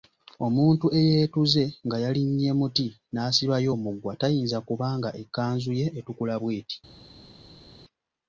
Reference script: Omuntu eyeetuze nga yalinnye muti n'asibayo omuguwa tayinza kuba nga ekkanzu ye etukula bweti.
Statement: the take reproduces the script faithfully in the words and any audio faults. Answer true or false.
true